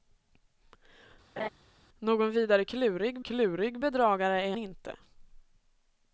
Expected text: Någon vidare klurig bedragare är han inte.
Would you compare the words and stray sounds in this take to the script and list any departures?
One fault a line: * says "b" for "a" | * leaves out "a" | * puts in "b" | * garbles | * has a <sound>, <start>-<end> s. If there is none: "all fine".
* has a laugh, 1.4-1.5 s
* puts in "klurig"
* leaves out "han"